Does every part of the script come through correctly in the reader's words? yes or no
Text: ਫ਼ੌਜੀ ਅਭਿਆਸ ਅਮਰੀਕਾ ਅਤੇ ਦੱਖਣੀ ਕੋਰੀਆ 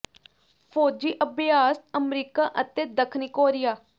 yes